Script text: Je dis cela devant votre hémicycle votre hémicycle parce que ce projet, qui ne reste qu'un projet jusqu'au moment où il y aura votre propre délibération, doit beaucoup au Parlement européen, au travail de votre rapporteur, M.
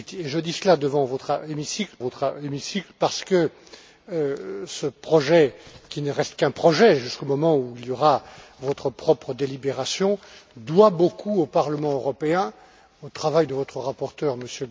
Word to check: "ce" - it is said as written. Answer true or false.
true